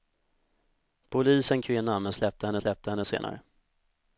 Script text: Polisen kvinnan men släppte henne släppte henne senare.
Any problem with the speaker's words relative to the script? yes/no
no